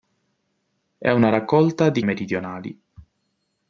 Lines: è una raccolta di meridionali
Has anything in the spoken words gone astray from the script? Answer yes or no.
no